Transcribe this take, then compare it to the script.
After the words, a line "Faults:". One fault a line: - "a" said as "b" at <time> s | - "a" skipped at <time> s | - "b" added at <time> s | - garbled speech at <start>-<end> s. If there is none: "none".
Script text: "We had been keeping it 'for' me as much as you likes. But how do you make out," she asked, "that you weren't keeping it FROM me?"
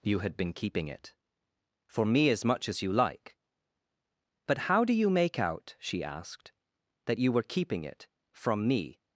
"You had been keeping it 'for' me as much as you like. But how do you make out," she asked, "that you were keeping it FROM me?"
Faults:
- "We" said as "You" at 0.0 s
- "likes" said as "like" at 2.9 s
- "weren't" said as "were" at 7.3 s